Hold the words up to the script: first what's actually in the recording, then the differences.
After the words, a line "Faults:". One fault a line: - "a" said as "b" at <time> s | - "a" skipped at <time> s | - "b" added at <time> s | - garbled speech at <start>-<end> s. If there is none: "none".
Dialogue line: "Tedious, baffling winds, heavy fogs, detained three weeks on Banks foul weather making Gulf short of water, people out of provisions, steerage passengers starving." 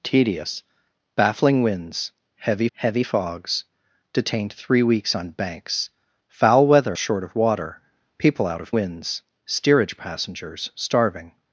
"Tedious, baffling winds, heavy heavy fogs, detained three weeks on Banks foul weather short of water, people out of winds, steerage passengers starving."
Faults:
- "heavy" added at 2.7 s
- "making Gulf" skipped at 7.0 s
- "provisions" said as "winds" at 8.7 s